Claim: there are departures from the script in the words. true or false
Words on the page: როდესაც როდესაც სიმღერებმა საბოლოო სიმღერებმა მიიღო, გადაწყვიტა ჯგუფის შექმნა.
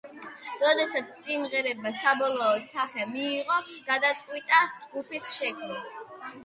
true